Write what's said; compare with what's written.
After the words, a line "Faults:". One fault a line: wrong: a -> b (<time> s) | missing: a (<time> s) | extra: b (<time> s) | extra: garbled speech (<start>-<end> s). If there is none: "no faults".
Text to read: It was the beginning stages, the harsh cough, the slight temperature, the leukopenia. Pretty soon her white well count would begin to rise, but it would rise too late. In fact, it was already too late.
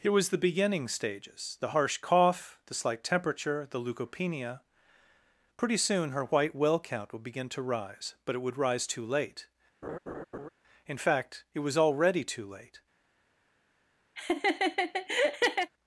It was the beginning stages, the harsh cough, the slight temperature, the leukopenia. Pretty soon her white well count would begin to rise, but it would rise too late. In fact, it was already too late.
Faults:
no faults